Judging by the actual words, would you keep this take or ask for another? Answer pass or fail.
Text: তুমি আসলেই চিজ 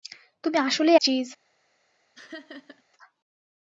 pass